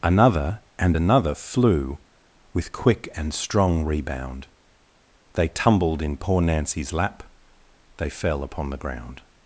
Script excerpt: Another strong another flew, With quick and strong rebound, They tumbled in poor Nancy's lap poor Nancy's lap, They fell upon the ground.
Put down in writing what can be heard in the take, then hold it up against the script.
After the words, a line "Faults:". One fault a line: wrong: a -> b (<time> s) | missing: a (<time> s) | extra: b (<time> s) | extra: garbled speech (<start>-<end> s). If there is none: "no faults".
Another and another flew, With quick and strong rebound, They tumbled in poor Nancy's lap, They fell upon the ground.
Faults:
wrong: strong -> and (0.8 s)
missing: poor Nancy's lap (7.2 s)